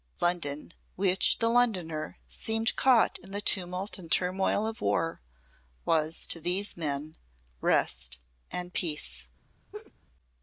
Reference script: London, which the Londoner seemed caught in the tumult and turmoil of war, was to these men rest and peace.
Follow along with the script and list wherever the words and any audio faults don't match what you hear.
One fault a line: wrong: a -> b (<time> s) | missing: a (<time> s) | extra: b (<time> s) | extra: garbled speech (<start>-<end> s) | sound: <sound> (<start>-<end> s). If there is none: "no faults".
sound: laugh (9.7-9.9 s)